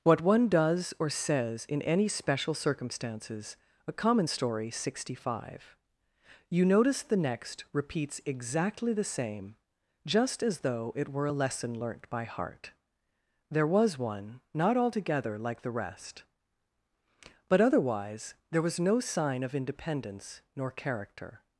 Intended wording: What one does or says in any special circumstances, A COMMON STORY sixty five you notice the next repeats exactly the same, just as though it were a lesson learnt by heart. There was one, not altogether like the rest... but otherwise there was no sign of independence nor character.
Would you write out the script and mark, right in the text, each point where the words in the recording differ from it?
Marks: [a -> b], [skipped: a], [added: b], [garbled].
What one does or says in any special circumstances, A COMMON STORY sixty five you notice the next repeats exactly the same, just as though it were a lesson learnt by heart. There was one, not altogether like the rest... but otherwise there was no sign of independence nor character.